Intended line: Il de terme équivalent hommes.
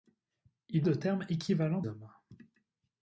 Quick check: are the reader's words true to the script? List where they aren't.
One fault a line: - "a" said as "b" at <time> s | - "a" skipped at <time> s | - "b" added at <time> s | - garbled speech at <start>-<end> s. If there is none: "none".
none